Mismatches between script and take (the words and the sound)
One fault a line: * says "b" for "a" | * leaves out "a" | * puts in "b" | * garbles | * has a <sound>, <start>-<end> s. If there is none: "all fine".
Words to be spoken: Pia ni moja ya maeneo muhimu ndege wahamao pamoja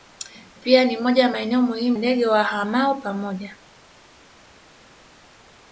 all fine